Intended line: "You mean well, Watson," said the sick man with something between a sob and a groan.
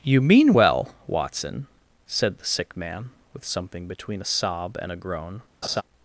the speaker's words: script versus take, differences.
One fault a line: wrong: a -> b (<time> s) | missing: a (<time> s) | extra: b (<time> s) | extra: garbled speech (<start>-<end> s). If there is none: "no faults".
no faults